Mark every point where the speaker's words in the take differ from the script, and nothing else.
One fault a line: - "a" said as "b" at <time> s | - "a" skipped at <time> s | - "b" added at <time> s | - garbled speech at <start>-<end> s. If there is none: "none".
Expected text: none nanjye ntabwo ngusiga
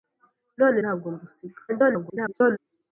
- "nanjye" skipped at 0.8 s
- garbled speech at 1.7-2.6 s